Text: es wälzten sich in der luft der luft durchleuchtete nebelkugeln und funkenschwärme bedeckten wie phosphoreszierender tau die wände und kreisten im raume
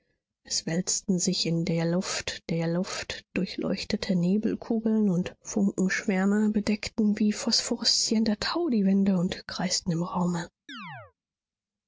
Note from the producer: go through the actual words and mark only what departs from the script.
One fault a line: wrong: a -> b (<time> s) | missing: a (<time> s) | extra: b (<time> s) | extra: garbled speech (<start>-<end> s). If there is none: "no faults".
no faults